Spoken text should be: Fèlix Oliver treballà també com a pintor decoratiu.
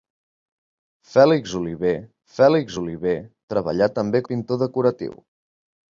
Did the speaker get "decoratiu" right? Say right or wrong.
right